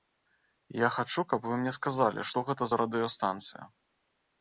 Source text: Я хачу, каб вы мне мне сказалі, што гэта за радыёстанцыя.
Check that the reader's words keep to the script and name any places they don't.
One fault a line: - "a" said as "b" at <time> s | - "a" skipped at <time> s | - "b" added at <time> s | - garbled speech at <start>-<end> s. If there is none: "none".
- "мне" skipped at 1.8 s